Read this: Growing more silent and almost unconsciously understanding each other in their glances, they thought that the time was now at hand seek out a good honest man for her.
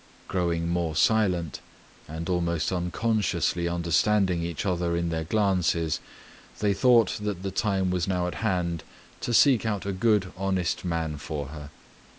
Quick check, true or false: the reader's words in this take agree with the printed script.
false